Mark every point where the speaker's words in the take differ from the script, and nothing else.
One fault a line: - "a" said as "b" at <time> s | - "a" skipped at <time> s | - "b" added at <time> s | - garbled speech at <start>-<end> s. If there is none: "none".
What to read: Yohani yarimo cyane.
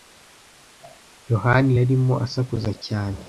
- "asakuza" added at 2.3 s